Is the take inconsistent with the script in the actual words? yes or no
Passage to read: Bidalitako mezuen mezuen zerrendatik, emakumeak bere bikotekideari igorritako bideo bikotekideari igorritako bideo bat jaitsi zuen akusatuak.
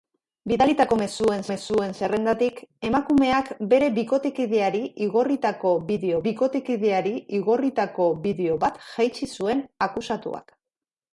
no